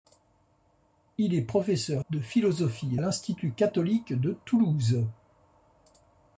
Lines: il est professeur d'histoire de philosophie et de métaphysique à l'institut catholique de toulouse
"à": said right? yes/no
no